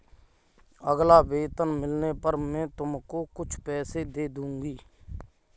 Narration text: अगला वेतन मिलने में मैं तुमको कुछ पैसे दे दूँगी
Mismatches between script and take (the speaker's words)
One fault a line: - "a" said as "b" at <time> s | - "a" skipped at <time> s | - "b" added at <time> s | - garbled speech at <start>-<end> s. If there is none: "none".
- "में" said as "पर" at 2.2 s